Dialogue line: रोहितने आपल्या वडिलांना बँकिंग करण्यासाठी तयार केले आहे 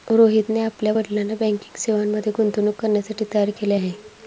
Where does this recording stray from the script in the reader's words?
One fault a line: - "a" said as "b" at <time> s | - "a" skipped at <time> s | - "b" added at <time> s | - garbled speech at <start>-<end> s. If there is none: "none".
- "सेवांमध्ये गुंतवणूक" added at 1.8 s